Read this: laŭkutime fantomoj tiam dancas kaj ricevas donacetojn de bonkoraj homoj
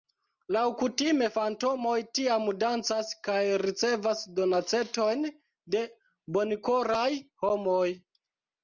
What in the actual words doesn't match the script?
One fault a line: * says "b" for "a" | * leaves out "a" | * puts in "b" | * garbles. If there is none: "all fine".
all fine